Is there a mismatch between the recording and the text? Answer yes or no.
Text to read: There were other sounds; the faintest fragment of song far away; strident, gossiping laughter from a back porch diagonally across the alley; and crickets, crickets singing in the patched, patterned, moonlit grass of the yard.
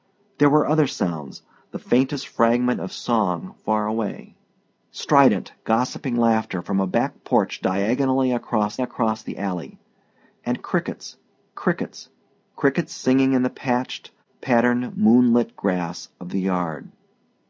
yes